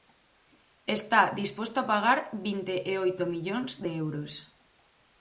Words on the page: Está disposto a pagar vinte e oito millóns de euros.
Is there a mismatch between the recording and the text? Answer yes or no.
no